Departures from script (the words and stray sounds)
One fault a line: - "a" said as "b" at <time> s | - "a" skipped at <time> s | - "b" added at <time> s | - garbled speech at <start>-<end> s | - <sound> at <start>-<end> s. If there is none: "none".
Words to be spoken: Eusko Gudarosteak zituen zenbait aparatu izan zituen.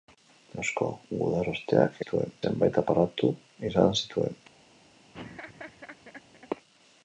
- laugh at 5.1-6.5 s